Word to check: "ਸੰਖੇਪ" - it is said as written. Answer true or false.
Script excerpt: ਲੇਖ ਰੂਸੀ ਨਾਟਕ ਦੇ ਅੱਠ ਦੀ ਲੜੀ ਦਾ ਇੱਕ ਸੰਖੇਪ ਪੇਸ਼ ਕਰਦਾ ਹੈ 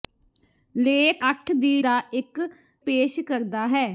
false